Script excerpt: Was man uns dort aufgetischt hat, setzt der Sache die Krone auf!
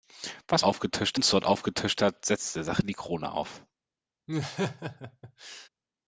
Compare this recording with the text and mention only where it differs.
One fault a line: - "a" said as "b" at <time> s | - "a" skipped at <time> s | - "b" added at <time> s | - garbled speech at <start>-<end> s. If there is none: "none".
- "man" said as "aufgetischt" at 0.6 s